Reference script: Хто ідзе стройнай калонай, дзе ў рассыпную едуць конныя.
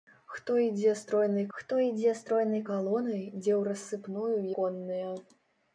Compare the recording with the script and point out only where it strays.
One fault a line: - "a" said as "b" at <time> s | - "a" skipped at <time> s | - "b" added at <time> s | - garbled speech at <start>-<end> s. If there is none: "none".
- "хто ідзе стройнай" added at 1.6 s
- "едуць" skipped at 4.4 s